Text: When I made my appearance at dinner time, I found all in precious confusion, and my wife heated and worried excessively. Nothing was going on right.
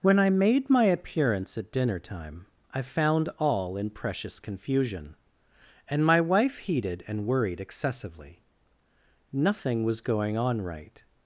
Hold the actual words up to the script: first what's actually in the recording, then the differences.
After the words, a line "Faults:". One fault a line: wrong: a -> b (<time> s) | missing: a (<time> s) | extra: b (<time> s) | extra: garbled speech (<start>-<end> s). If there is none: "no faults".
When I made my appearance at dinner time, I found all in precious confusion, and my wife heated and worried excessively. Nothing was going on right.
Faults:
no faults